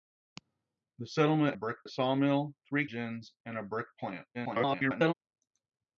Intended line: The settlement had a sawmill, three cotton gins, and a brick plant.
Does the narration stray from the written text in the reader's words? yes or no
yes